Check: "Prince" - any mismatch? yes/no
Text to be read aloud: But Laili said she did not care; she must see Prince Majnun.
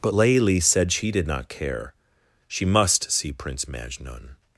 no